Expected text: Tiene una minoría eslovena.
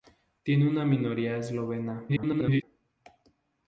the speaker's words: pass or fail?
fail